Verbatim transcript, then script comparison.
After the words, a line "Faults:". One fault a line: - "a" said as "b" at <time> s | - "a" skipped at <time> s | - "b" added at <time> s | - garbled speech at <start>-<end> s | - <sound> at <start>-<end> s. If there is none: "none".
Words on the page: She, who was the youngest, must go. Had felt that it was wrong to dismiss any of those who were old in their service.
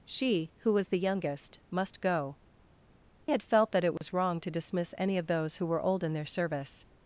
She, who was the youngest, must go. Had felt that it was wrong to dismiss any of those who were old in their service.
Faults:
- dropout at 4.0-4.0 s